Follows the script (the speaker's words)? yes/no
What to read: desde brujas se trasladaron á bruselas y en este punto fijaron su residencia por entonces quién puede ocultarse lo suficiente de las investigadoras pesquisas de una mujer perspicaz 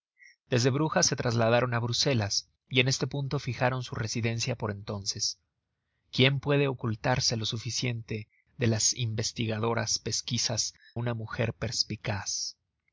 no